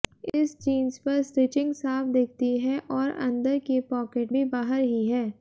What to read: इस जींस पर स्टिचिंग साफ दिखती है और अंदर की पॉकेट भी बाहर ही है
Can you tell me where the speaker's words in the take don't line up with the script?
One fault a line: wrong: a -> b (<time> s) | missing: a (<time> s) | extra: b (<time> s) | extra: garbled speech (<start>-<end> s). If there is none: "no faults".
no faults